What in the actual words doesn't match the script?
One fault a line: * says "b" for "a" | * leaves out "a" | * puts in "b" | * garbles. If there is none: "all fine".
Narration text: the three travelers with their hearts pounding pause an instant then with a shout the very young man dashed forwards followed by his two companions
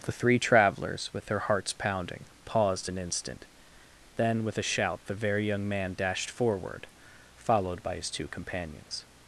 * says "paused" for "pause"
* says "forward" for "forwards"